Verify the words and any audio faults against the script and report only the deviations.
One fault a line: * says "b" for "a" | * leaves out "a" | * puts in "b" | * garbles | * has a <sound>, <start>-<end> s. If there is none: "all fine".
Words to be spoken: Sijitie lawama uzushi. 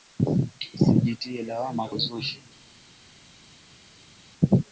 all fine